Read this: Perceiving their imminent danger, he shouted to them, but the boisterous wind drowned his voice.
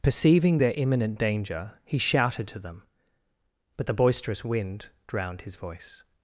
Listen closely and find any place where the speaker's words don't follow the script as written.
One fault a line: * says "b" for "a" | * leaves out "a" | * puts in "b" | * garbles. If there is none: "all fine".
all fine